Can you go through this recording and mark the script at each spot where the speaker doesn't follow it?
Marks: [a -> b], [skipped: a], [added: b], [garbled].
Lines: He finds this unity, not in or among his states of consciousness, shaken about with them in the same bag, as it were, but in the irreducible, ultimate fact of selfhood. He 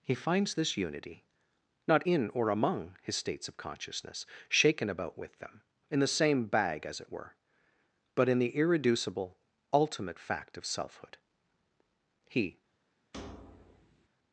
He finds this unity, not in or among his states of consciousness, shaken about with them in the same bag, as it were, but in the irreducible, ultimate fact of selfhood. He